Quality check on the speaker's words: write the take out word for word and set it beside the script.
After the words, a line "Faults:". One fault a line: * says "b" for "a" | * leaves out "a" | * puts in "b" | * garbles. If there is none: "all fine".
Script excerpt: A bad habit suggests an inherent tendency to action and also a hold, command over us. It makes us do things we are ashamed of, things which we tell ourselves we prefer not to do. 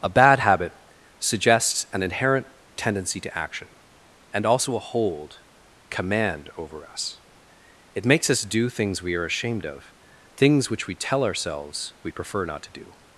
A bad habit suggests an inherent tendency to action and also a hold, command over us. It makes us do things we are ashamed of, things which we tell ourselves we prefer not to do.
Faults:
all fine